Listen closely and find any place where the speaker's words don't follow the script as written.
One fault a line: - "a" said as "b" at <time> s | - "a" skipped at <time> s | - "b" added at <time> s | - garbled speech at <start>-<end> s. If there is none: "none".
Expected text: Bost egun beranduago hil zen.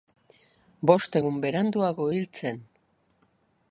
none